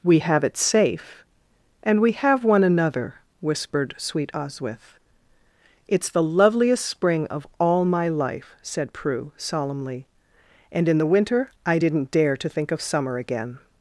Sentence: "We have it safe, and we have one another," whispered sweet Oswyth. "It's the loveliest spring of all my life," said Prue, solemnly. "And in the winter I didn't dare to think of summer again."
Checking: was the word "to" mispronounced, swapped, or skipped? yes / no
no